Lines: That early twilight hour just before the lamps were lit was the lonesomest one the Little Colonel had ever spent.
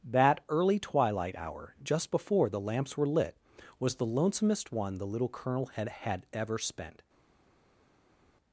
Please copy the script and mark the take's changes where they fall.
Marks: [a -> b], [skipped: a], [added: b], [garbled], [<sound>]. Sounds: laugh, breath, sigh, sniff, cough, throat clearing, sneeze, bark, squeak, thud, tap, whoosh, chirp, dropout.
That early twilight hour just before the lamps were lit was the lonesomest one the Little Colonel had [added: had] ever spent.